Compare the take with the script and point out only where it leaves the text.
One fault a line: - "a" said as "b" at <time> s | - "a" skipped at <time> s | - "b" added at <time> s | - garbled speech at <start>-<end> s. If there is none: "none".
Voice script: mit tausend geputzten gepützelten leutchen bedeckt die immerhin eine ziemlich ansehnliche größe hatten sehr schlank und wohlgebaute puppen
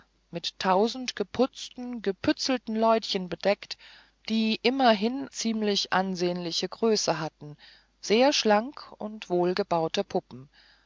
- "eine" skipped at 5.3 s